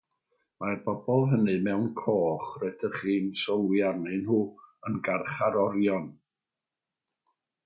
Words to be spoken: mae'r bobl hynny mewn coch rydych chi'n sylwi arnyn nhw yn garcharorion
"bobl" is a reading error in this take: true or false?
false